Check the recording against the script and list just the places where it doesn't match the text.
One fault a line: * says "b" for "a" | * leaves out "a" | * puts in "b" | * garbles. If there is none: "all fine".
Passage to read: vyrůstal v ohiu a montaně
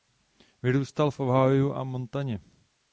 all fine